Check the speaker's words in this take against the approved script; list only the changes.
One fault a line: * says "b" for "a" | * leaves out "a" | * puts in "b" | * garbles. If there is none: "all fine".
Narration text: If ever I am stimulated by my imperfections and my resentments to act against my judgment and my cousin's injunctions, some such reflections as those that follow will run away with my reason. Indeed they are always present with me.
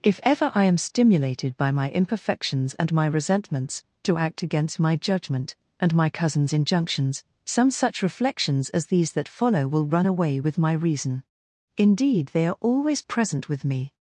* says "these" for "those"